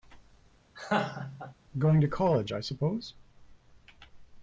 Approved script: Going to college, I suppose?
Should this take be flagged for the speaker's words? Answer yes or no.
no